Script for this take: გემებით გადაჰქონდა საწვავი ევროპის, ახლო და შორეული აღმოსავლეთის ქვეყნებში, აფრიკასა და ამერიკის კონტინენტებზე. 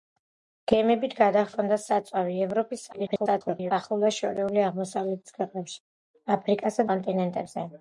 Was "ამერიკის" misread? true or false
true